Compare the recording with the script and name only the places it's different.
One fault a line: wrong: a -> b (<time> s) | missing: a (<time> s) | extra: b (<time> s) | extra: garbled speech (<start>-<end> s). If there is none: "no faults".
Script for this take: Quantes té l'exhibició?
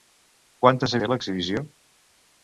no faults